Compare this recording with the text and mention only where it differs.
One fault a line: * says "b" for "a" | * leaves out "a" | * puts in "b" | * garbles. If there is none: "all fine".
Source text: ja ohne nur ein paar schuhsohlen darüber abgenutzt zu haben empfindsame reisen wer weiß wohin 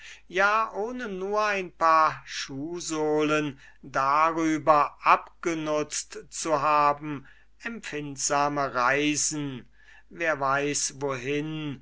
all fine